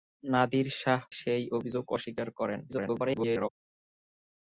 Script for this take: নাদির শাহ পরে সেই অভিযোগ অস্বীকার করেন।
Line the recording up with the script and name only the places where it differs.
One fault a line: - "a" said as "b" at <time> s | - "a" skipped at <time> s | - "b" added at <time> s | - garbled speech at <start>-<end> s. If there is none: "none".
- "পরে" skipped at 1.0 s
- garbled speech at 2.7-3.5 s